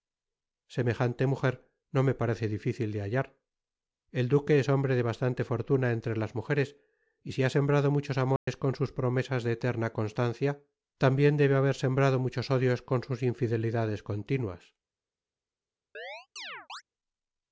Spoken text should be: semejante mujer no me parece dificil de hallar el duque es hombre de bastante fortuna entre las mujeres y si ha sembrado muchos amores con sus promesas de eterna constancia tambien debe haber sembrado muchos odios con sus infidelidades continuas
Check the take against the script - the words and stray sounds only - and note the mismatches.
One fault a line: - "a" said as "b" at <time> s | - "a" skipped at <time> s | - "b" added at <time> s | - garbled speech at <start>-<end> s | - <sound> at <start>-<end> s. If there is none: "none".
- dropout at 8.4-8.5 s
- chirp at 15.9-16.8 s